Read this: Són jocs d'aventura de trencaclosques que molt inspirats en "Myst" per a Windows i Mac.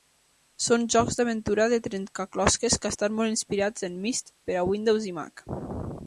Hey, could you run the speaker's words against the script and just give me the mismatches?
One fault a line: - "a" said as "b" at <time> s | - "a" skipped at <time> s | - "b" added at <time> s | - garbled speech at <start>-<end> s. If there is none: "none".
- "estan" added at 2.9 s